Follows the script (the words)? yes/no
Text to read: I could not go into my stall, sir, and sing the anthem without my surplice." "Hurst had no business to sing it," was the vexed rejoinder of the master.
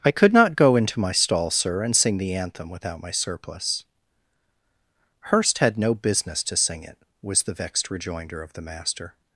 yes